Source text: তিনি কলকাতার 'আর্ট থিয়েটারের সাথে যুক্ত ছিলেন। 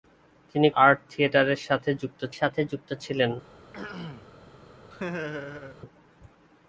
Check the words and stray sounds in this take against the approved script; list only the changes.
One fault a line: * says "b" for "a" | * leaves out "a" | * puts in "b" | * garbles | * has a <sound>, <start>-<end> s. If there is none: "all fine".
* leaves out "কলকাতার"
* puts in "সাথে যুক্ত"
* has a throat clearing, 3.7-4.3 s
* has a laugh, 4.9-5.8 s